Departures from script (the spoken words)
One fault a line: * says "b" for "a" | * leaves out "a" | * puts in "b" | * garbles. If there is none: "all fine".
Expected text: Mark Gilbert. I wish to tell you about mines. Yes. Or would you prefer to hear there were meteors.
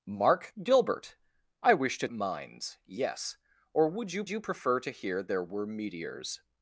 * leaves out "tell you about"
* puts in "you"